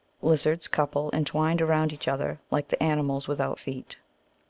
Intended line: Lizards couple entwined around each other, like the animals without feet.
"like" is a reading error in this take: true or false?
false